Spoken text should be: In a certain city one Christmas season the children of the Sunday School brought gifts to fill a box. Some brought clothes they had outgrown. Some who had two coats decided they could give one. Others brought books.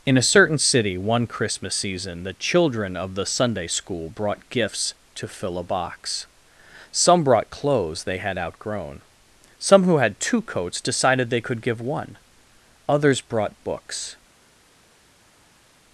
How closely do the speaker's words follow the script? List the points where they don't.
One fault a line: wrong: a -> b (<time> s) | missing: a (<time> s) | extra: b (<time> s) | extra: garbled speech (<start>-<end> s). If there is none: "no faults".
no faults